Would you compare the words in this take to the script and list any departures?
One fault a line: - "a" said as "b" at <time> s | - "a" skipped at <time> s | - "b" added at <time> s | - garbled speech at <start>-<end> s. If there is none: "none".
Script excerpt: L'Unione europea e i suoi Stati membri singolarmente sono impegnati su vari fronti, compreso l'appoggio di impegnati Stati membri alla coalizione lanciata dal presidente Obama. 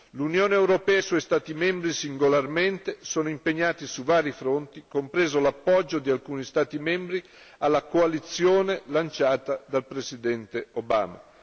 - "impegnati" said as "alcuni" at 6.1 s